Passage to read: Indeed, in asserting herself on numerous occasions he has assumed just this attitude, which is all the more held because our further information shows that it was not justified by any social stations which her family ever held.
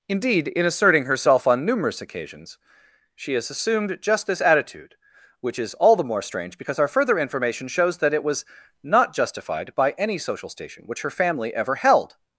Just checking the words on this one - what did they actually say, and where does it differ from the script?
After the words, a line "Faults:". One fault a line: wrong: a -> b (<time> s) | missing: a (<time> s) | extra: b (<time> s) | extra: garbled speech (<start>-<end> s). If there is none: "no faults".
Indeed, in asserting herself on numerous occasions she has assumed just this attitude, which is all the more strange because our further information shows that it was not justified by any social station which her family ever held.
Faults:
wrong: he -> she (3.1 s)
wrong: held -> strange (6.2 s)
wrong: stations -> station (10.5 s)